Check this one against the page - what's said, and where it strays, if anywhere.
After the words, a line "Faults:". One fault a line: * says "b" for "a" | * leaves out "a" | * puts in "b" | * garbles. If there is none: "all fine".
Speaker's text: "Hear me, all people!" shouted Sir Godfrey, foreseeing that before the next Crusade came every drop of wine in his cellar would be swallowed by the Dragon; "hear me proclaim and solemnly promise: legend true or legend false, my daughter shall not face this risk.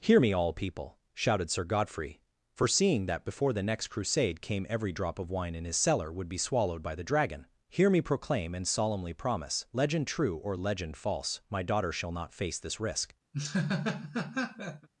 "Hear me, all people!" shouted Sir Godfrey, foreseeing that before the next Crusade came every drop of wine in his cellar would be swallowed by the Dragon; "hear me proclaim and solemnly promise: legend true or legend false, my daughter shall not face this risk.
Faults:
all fine